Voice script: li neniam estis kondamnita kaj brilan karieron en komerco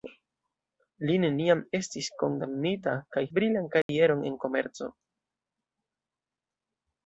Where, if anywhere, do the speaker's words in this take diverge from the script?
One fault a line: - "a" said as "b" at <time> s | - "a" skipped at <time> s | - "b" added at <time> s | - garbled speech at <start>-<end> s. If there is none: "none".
none